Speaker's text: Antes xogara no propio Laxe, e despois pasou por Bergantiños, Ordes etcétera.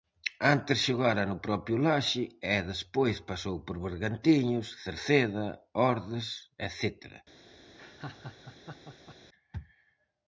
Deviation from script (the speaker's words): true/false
true